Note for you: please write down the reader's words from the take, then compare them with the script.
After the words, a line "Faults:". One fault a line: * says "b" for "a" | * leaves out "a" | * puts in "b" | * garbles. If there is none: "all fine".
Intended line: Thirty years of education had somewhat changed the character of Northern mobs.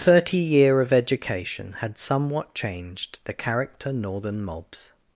Thirty year of education had somewhat changed the character Northern mobs.
Faults:
* says "year" for "years"
* leaves out "of"